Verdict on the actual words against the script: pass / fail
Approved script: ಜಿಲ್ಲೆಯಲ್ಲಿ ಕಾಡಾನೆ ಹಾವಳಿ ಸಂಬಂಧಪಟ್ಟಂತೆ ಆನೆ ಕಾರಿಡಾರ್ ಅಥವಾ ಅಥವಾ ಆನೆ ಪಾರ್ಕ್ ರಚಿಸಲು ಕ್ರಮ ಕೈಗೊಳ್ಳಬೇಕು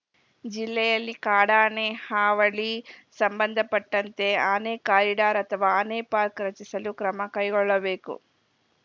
fail